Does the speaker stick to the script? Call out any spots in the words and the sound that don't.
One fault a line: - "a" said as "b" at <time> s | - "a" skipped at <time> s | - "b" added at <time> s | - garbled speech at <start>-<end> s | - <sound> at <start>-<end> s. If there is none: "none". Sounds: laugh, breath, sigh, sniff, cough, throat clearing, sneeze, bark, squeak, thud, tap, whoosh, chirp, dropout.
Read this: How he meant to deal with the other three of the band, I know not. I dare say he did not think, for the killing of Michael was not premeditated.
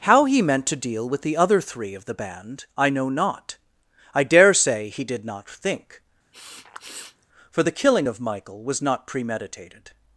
- sniff at 6.3-7.3 s